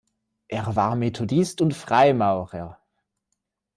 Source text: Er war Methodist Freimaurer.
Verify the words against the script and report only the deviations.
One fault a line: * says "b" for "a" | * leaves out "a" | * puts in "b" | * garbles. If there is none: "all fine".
* puts in "und"